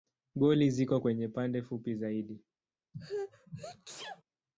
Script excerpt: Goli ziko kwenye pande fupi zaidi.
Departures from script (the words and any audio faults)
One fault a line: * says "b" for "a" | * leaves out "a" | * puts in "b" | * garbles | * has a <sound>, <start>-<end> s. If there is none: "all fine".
* has a sneeze, 2.9-4.2 s